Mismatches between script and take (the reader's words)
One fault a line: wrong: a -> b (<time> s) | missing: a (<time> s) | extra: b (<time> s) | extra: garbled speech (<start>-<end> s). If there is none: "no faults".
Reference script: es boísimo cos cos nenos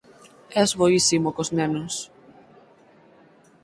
missing: cos (1.5 s)